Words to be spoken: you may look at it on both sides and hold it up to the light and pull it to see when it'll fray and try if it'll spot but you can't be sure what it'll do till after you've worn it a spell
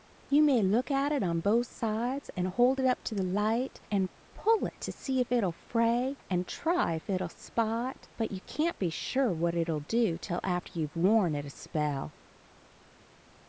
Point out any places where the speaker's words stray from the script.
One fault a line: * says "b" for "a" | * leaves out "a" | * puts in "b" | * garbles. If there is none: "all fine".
* says "if" for "when"